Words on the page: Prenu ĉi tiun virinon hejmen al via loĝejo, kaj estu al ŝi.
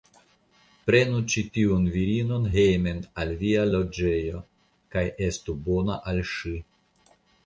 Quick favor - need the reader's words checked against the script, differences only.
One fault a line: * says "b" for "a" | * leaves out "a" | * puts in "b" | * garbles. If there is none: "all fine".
* puts in "bona"